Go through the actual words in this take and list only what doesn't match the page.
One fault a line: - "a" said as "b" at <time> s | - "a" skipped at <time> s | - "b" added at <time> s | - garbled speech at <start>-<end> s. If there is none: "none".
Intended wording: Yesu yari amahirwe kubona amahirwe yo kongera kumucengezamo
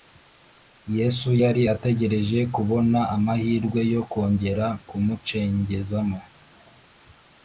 - "amahirwe" said as "ategereje" at 1.7 s